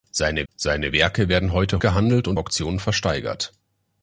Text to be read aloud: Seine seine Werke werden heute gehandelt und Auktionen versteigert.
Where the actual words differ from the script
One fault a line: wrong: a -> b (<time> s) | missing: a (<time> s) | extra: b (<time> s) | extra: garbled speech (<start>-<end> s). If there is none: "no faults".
no faults